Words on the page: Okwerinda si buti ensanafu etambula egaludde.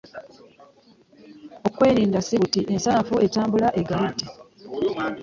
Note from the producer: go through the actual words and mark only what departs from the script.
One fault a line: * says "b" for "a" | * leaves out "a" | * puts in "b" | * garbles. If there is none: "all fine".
all fine